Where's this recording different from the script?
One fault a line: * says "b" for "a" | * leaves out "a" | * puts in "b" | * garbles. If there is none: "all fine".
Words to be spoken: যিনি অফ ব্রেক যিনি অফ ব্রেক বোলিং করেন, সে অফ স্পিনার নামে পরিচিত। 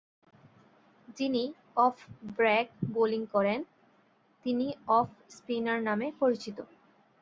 * leaves out "যিনি অফ ব্রেক"
* says "তিনি" for "সে"